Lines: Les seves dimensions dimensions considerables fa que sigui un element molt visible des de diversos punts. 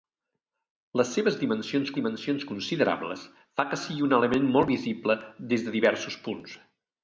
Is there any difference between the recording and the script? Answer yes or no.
no